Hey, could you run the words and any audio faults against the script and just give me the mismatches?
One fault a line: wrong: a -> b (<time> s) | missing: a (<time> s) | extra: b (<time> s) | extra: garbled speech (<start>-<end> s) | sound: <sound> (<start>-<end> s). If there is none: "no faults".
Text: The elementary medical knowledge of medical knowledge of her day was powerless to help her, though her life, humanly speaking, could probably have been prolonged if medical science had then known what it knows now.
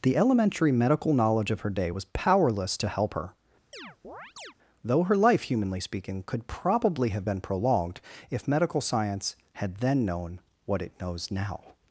missing: medical knowledge of (1.6 s)
sound: chirp (3.7-4.5 s)